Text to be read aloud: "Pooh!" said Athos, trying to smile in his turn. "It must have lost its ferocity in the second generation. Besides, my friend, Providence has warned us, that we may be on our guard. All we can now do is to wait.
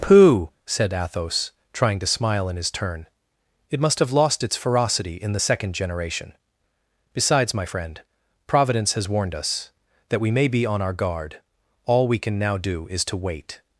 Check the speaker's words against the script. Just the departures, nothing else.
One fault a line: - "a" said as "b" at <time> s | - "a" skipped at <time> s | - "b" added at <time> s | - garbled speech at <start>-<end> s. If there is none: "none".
none